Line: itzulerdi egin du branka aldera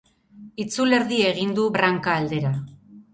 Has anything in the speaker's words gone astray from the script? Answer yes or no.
no